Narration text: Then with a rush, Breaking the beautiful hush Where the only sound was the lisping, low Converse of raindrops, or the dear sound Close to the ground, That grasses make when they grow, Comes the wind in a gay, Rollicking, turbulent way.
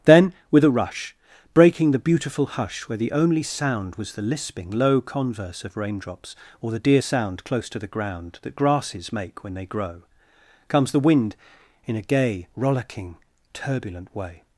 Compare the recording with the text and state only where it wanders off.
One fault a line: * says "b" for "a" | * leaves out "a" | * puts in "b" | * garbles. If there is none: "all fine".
all fine